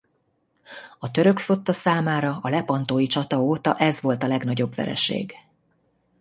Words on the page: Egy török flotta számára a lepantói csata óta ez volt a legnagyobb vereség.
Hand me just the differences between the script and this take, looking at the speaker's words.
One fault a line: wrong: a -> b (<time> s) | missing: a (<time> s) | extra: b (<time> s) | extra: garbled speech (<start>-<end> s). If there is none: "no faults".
wrong: Egy -> A (1.0 s)